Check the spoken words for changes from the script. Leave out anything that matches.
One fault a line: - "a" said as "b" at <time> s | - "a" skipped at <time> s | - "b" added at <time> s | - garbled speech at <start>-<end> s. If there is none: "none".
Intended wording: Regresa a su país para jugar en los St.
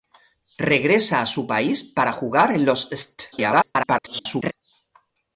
- garbled speech at 3.3-4.5 s